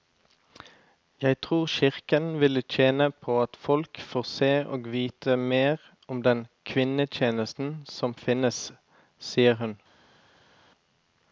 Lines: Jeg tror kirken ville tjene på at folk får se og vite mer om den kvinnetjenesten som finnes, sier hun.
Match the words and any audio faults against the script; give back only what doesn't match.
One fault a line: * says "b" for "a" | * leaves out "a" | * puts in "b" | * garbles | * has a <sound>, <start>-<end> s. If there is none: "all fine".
all fine